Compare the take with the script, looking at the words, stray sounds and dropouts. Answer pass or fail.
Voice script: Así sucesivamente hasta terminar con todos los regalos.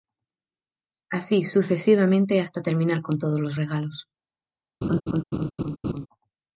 fail